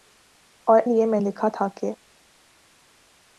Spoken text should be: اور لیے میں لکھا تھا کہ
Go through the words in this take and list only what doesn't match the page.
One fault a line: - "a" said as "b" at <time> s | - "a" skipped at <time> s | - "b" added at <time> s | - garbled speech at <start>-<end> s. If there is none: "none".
none